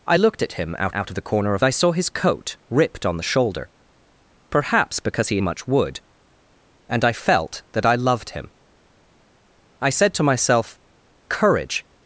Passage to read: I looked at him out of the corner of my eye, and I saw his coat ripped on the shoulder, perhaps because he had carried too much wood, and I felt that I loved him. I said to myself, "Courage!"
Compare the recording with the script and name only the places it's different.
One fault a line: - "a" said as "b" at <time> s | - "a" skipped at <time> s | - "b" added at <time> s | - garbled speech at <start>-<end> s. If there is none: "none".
- "out" added at 0.9 s
- "my eye and" skipped at 1.6 s
- "had carried too" skipped at 5.4 s